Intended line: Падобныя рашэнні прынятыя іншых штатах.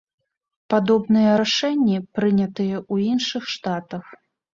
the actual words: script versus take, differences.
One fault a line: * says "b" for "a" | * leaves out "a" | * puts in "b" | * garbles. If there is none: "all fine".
* puts in "ў"